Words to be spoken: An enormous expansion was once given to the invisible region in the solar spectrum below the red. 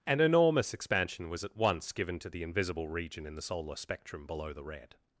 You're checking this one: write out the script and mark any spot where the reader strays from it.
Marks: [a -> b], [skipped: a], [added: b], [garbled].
An enormous expansion was [added: at] once given to the invisible region in the solar spectrum below the red.